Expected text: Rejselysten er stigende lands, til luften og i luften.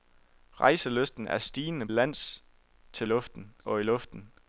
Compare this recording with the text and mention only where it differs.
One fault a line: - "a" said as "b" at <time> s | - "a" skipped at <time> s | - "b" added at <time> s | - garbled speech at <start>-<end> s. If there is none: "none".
none